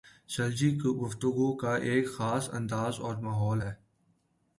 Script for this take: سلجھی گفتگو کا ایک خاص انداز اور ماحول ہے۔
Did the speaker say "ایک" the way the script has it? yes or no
yes